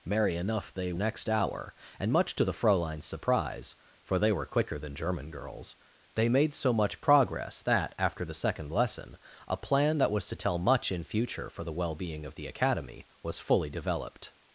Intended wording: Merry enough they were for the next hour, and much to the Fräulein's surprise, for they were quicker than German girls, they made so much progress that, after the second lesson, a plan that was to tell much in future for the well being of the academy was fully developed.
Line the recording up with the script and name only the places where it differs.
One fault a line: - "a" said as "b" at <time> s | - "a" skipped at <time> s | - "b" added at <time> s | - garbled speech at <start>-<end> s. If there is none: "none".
- "were for the" skipped at 0.9 s